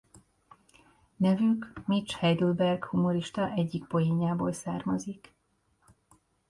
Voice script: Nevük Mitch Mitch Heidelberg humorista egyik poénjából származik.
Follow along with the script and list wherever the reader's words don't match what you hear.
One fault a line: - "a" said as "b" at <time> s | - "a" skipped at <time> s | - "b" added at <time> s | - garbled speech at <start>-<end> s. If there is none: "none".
- "Mitch" skipped at 2.1 s